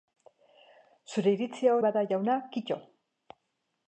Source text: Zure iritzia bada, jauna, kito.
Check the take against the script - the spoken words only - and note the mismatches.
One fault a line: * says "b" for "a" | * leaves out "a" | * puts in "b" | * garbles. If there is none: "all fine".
all fine